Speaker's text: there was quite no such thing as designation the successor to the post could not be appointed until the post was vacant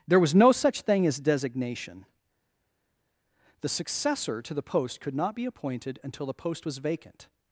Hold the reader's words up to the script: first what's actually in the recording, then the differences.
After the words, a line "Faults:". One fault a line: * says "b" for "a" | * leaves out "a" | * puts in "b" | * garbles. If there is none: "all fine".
there was no such thing as designation the successor to the post could not be appointed until the post was vacant
Faults:
* leaves out "quite"